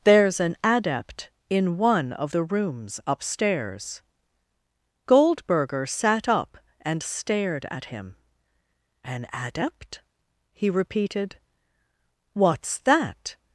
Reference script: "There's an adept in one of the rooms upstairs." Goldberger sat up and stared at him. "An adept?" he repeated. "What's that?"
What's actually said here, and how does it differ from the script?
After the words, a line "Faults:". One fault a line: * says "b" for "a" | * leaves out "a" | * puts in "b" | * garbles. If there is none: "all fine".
"There's an adept in one of the rooms upstairs." Goldberger sat up and stared at him. "An adept?" he repeated. "What's that?"
Faults:
all fine